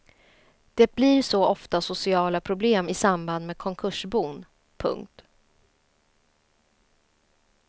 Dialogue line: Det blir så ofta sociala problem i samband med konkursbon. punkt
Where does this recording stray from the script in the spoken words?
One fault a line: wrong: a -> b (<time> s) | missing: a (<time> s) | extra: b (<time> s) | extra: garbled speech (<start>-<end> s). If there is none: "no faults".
no faults